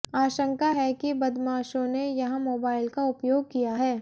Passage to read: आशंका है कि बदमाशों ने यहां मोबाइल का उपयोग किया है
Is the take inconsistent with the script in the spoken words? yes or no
no